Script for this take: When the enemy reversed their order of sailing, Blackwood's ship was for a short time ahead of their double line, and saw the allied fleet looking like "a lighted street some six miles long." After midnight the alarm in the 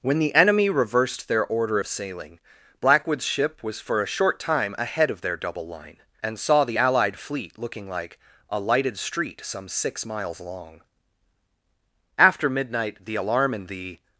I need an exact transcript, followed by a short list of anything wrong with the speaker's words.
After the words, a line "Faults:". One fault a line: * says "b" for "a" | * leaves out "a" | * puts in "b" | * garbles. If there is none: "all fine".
When the enemy reversed their order of sailing, Blackwood's ship was for a short time ahead of their double line, and saw the allied fleet looking like "a lighted street some six miles long." After midnight the alarm in the
Faults:
all fine